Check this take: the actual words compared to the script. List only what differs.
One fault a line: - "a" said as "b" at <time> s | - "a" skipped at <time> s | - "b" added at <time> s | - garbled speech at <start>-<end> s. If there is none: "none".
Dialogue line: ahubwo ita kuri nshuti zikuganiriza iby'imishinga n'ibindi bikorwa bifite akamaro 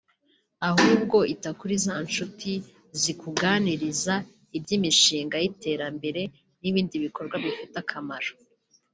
- "za" added at 1.8 s
- "y'iterambere" added at 5.4 s